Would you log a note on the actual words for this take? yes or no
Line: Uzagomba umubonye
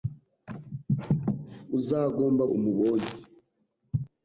no